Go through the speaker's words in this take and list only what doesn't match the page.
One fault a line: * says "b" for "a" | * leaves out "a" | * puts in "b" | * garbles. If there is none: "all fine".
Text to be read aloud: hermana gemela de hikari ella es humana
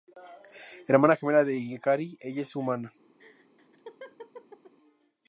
all fine